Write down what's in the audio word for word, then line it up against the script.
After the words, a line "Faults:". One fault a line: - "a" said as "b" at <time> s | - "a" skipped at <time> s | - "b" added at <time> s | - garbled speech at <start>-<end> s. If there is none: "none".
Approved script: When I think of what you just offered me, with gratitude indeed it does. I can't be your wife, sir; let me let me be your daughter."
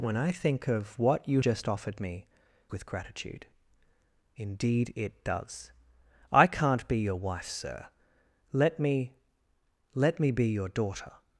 When I think of what you just offered me, with gratitude indeed it does. I can't be your wife, sir; let me let me be your daughter."
Faults:
none